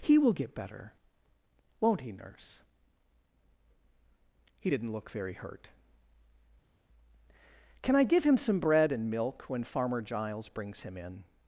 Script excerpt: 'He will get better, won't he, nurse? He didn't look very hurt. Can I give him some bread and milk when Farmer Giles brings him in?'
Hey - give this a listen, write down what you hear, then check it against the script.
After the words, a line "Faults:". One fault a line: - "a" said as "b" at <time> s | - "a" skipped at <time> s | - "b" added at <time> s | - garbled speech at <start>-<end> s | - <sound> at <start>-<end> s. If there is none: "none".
'He will get better, won't he, nurse? He didn't look very hurt. Can I give him some bread and milk when Farmer Giles brings him in?'
Faults:
none